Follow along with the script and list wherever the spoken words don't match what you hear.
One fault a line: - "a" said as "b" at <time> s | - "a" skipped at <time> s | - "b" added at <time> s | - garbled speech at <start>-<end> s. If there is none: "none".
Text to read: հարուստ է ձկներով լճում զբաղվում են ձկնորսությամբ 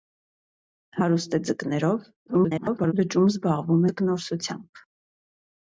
- garbled speech at 2.3-2.9 s
- "են" skipped at 3.8 s